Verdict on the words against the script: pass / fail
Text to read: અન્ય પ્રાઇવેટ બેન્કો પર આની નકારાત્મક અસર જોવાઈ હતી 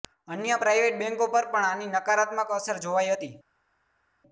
fail